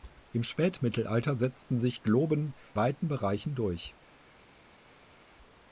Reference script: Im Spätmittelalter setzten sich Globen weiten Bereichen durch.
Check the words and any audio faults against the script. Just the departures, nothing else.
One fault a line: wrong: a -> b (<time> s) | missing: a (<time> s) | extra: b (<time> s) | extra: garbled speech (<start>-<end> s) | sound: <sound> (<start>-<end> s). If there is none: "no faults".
no faults